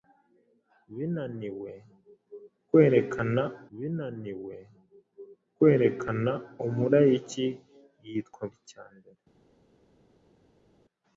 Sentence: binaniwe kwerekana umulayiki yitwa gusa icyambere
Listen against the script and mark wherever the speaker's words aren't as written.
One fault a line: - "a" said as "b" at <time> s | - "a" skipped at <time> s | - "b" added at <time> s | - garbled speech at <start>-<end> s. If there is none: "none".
- "binaniwe kwerekana" added at 3.8 s
- "gusa" skipped at 8.4 s